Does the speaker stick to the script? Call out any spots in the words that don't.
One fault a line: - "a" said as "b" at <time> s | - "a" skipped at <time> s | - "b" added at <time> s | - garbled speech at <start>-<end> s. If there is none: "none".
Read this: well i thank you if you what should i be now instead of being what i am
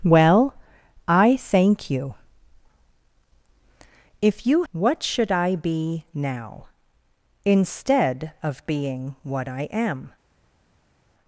none